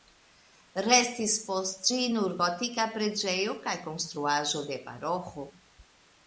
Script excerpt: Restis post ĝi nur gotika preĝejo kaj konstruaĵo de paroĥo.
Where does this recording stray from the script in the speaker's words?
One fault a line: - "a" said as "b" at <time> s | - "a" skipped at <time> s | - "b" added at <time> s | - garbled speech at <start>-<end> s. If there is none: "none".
none